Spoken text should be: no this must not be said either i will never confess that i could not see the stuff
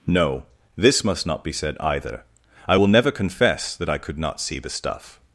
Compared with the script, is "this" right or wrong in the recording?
right